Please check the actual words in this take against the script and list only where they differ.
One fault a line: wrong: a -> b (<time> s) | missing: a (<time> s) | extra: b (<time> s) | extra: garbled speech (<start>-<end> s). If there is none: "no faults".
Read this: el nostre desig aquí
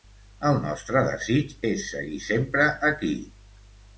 extra: és seguir sempre (1.7 s)